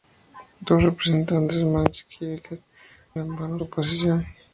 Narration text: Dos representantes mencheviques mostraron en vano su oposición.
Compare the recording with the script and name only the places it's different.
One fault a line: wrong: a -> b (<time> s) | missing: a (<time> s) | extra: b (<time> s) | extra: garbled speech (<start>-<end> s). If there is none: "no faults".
missing: mostraron (2.6 s)
missing: su (3.6 s)